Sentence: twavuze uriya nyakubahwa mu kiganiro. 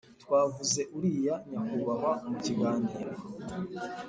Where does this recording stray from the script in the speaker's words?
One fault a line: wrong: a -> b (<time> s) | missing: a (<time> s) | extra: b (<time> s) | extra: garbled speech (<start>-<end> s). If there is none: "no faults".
no faults